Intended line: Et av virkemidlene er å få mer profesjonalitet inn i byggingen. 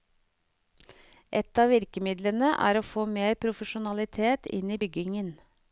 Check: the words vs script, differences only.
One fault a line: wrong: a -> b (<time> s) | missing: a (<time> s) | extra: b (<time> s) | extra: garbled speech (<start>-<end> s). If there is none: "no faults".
no faults